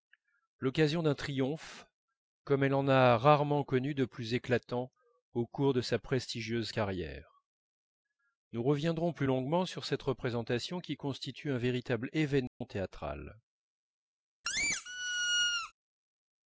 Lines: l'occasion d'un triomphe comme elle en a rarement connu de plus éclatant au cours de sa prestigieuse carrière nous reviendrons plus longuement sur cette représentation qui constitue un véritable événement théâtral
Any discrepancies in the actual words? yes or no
no